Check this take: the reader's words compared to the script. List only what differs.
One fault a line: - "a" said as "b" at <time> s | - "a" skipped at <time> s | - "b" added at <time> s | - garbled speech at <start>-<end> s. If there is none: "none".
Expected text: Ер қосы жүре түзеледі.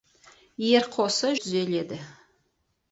- "жүре" skipped at 1.3 s